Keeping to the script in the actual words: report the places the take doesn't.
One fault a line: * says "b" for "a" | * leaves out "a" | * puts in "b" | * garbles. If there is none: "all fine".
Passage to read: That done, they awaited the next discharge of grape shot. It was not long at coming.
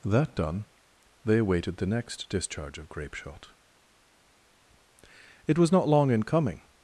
* says "in" for "at"